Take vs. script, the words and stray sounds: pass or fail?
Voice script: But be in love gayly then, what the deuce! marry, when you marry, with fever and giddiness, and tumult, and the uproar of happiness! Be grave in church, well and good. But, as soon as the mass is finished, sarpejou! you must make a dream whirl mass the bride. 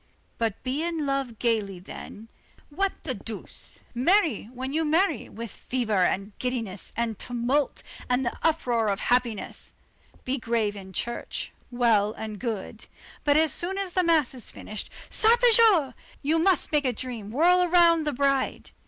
fail